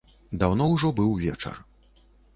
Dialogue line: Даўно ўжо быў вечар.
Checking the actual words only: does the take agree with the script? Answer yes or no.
yes